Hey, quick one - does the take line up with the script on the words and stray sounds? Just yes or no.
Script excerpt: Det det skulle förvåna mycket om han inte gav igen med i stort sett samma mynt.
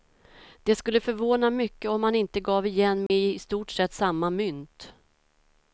no